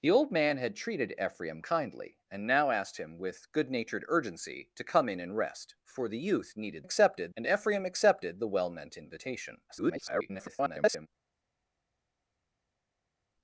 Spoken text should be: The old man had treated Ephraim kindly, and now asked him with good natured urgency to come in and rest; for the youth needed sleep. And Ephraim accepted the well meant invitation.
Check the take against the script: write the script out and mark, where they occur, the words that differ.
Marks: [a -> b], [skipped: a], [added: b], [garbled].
The old man had treated Ephraim kindly, and now asked him with good natured urgency to come in and rest; for the youth needed [sleep. -> accepted] And Ephraim accepted the well meant invitation. [garbled]